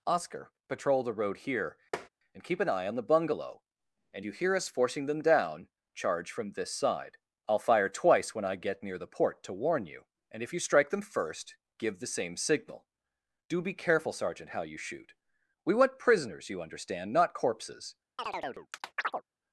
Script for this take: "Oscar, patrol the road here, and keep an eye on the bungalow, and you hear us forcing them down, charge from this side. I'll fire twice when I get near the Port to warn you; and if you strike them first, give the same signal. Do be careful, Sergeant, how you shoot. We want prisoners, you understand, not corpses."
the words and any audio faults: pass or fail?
fail